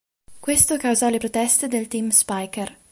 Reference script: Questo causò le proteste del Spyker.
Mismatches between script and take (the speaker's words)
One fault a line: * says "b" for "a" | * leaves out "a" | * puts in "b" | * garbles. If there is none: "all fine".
* puts in "team"